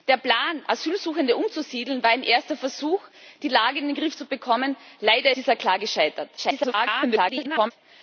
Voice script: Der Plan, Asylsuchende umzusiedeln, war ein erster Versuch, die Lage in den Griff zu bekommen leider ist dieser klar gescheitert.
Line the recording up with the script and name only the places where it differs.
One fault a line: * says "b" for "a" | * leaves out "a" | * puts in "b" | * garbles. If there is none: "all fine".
* leaves out "ist"
* garbles